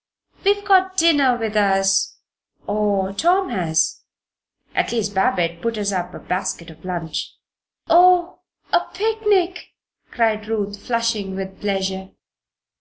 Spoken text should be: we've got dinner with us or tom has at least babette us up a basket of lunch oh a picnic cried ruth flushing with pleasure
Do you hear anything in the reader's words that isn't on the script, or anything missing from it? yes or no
yes